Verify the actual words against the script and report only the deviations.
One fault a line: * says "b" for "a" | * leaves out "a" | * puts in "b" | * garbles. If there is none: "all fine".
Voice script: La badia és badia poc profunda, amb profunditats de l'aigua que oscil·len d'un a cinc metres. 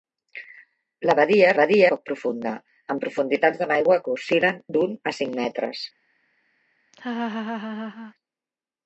all fine